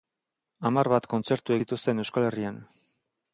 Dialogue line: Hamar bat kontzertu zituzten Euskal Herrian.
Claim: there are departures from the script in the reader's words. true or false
false